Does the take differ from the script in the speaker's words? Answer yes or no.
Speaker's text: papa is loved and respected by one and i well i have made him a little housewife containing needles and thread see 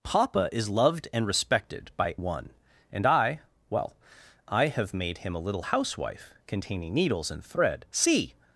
no